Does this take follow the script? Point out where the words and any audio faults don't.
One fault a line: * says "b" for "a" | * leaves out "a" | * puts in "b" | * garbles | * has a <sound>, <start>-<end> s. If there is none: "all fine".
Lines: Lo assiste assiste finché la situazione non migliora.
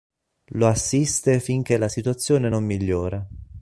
* leaves out "assiste"